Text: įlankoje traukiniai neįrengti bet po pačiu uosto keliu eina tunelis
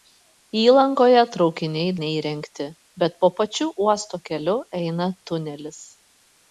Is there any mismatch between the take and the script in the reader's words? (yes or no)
no